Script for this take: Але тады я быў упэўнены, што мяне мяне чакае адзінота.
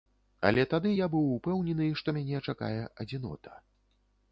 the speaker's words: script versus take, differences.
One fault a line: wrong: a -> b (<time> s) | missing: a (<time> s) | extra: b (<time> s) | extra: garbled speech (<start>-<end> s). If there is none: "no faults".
missing: мяне (2.4 s)